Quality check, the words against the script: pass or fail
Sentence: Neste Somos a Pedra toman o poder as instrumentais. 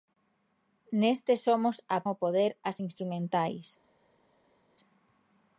fail